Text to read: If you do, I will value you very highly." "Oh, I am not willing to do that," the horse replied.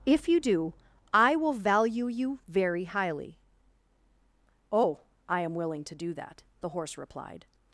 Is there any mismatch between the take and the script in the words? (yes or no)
yes